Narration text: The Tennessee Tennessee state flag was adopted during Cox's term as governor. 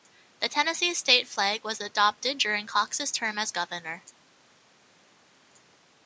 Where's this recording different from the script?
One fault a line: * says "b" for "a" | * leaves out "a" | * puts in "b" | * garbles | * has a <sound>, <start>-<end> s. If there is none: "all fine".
* leaves out "Tennessee"